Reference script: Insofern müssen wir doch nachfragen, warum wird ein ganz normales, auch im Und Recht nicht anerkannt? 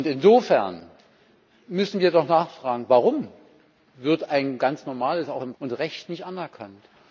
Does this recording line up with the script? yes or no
yes